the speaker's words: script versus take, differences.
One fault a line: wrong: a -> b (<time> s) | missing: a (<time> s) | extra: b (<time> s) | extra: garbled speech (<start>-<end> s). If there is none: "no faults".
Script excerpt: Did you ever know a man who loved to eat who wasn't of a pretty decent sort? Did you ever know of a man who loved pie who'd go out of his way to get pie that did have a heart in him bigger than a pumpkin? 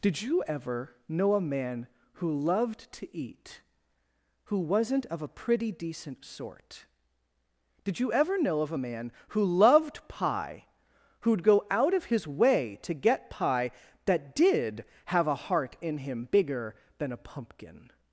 no faults